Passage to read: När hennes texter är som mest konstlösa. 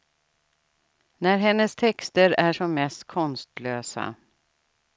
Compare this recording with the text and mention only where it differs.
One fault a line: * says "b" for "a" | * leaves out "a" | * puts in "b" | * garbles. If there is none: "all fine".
all fine